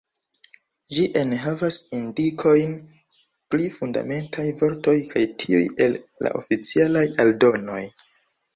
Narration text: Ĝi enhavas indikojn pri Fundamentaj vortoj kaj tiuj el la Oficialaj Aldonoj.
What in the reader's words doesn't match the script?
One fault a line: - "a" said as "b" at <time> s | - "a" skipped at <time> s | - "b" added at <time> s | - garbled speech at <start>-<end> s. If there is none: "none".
none